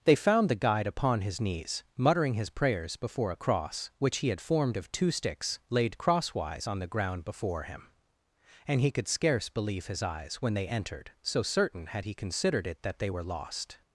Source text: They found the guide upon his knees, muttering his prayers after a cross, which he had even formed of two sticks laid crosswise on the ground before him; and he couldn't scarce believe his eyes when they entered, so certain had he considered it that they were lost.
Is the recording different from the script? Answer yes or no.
yes